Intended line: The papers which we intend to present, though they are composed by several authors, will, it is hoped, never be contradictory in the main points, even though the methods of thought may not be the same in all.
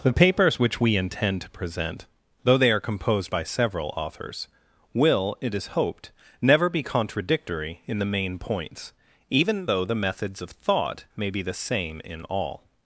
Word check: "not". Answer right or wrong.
wrong